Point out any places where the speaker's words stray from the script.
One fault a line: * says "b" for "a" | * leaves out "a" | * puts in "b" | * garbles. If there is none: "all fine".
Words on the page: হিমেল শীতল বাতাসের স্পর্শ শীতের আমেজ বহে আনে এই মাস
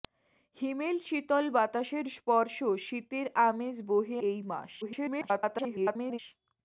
* leaves out "আনে"
* garbles